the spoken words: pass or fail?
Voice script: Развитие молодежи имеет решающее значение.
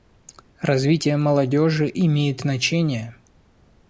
fail